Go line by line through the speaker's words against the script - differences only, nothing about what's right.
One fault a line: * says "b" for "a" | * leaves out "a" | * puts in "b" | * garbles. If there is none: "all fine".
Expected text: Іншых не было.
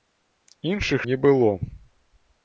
all fine